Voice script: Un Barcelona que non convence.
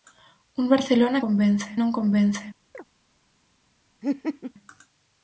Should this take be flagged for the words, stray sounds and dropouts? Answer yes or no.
yes